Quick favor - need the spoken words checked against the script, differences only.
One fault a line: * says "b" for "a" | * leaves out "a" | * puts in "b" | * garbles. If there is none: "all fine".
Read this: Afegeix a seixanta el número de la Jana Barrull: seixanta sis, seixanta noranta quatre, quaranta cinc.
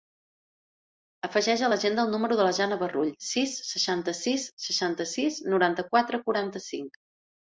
* says "l'agenda" for "seixanta"
* puts in "sis"
* puts in "sis"